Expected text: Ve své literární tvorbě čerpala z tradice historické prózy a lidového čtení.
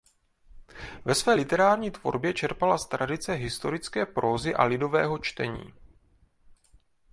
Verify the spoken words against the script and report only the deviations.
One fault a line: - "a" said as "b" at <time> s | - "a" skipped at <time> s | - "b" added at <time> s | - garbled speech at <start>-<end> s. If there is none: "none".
none